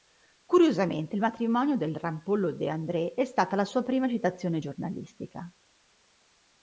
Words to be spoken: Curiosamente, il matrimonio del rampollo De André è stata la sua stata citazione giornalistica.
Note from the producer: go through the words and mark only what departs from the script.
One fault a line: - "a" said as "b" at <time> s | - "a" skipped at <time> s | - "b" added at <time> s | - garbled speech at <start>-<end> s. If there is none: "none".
- "stata" said as "prima" at 3.8 s